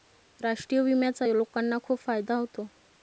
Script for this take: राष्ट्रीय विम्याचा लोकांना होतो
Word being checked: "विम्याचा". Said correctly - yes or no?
yes